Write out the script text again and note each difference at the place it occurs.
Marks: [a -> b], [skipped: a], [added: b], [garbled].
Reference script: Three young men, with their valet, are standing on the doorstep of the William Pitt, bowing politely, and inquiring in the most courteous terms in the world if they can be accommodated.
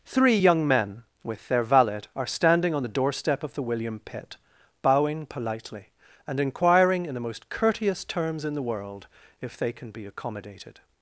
Three young men, with their valet, are standing on the doorstep of the William Pitt, bowing politely, and inquiring in the most courteous terms in the world if they can be accommodated.